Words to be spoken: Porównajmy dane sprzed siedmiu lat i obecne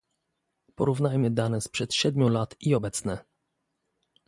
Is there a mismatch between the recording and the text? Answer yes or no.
no